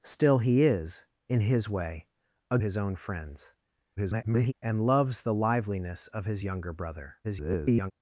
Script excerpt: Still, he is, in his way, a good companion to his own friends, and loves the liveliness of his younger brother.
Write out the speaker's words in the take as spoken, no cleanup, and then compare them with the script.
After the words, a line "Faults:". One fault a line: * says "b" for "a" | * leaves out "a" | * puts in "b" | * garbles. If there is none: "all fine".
Still, he is, in his way, a his own friends, [garbled] and loves the liveliness of his younger brother. [garbled]
Faults:
* leaves out "good companion to"
* garbles
* garbles